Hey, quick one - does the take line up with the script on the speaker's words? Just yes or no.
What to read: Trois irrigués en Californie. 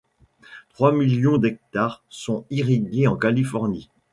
no